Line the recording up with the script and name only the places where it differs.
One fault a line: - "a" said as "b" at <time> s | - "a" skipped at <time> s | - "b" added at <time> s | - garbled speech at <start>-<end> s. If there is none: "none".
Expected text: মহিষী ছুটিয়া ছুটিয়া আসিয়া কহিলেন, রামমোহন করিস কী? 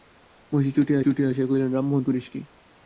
none